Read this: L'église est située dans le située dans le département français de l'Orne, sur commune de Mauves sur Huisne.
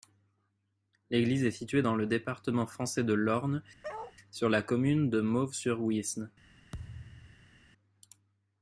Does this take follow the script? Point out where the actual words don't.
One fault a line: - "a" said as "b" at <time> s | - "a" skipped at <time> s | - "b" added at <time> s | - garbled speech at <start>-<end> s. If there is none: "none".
- "située dans le" skipped at 2.1 s
- "la" added at 4.5 s